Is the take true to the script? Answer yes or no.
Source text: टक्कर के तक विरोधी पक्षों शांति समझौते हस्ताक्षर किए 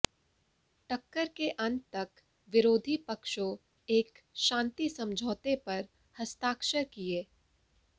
no